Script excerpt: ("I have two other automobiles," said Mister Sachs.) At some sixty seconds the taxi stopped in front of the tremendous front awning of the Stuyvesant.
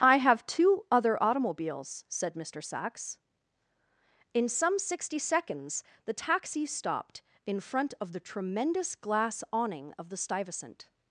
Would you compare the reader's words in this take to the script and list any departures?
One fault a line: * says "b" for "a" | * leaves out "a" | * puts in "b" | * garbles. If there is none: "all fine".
* says "In" for "At"
* says "glass" for "front"